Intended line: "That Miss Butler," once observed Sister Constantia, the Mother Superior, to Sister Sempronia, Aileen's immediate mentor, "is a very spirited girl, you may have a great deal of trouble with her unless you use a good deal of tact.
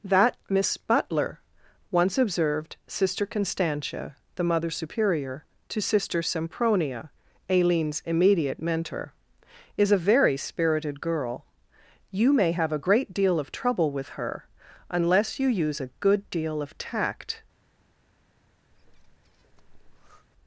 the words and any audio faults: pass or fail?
fail